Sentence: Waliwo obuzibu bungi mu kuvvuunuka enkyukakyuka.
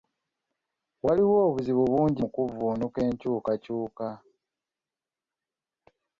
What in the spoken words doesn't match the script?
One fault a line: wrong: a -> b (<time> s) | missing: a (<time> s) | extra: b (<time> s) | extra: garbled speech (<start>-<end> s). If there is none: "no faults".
no faults